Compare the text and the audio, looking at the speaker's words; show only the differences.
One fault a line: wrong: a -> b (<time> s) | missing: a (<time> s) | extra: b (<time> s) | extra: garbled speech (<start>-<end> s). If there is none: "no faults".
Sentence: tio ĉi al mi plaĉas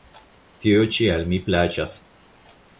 no faults